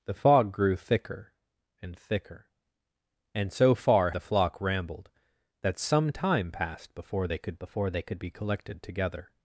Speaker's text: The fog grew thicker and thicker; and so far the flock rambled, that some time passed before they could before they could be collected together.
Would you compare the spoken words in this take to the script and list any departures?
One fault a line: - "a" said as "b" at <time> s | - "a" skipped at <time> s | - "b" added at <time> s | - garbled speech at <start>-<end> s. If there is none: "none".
none